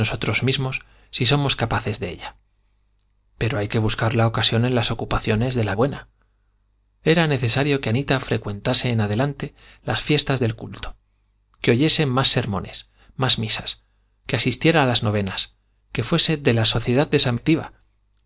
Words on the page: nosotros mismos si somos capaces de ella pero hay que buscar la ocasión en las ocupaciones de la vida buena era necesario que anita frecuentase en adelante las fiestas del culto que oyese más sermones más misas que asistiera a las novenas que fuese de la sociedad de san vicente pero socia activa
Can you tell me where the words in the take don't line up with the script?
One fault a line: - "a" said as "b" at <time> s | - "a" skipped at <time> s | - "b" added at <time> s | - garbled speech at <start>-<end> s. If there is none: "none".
- "vida" skipped at 5.8 s
- "vicente pero socia" skipped at 17.4 s